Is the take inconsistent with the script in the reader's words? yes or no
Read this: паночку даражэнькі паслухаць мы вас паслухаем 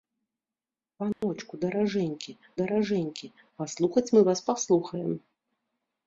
yes